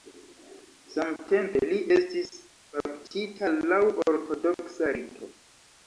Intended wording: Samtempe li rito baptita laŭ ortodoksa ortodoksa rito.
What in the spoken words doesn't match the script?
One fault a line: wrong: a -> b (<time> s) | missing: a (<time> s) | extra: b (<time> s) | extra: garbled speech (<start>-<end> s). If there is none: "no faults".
wrong: rito -> estis (2.0 s)
missing: ortodoksa (5.0 s)